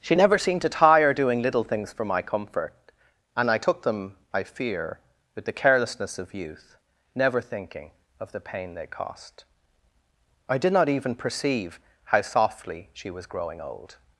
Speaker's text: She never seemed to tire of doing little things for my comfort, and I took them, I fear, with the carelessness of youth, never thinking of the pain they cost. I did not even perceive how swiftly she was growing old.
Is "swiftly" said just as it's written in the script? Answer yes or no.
no